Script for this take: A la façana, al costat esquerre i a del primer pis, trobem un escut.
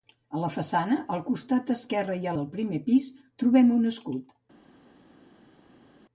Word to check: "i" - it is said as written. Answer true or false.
true